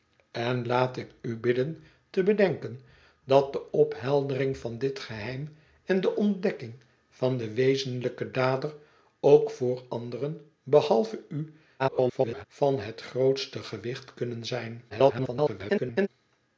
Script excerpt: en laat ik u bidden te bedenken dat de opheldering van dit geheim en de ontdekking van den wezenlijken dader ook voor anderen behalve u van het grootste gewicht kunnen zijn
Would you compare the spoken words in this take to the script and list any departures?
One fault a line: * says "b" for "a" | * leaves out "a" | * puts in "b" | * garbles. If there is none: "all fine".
* garbles
* garbles